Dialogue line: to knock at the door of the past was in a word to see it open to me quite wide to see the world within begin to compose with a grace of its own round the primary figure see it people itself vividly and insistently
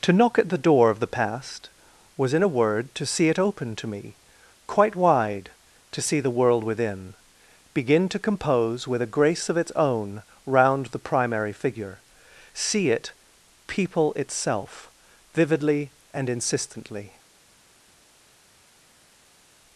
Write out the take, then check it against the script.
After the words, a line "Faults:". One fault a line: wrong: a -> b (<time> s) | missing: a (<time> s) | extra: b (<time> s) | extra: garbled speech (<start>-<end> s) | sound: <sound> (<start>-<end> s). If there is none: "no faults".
to knock at the door of the past was in a word to see it open to me quite wide to see the world within begin to compose with a grace of its own round the primary figure see it people itself vividly and insistently
Faults:
no faults